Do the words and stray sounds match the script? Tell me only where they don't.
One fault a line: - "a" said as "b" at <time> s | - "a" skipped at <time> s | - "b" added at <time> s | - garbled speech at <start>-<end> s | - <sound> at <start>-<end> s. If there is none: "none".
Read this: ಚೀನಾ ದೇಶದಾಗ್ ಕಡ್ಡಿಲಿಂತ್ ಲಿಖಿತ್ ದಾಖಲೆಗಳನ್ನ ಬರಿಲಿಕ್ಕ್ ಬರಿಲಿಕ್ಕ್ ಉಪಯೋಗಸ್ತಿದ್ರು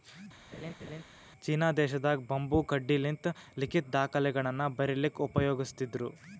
- laugh at 0.5-1.0 s
- "ಬಂಬೂ" added at 2.3 s
- "ಬರಿಲಿಕ್ಕ್" skipped at 5.2 s